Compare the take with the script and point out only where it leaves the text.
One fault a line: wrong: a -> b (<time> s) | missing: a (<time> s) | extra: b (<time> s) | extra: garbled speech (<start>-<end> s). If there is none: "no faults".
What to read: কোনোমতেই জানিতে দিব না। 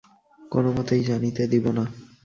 no faults